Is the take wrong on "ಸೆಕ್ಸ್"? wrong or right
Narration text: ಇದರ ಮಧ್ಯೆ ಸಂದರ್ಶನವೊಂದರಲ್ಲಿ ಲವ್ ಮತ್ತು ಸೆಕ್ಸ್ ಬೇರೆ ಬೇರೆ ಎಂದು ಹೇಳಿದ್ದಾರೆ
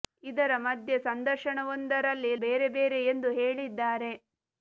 wrong